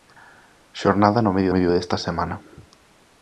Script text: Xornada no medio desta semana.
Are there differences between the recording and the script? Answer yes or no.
yes